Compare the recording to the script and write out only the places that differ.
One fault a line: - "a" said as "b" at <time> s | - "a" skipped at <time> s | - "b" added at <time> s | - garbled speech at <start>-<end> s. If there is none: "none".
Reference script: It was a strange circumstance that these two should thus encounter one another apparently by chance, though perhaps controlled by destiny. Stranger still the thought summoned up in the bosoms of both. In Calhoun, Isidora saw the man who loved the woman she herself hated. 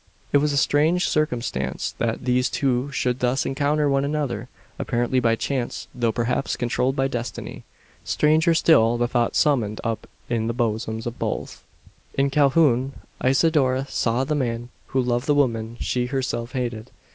none